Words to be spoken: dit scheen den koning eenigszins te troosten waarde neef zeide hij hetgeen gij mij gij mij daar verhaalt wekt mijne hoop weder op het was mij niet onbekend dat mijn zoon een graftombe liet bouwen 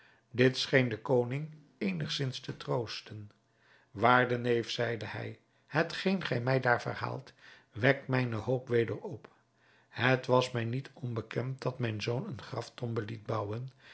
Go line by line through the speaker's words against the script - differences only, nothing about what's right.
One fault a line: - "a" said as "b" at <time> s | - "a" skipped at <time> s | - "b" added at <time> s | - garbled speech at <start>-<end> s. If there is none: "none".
- "gij mij" skipped at 6.6 s